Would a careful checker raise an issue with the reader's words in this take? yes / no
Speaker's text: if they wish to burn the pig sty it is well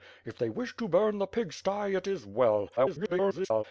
yes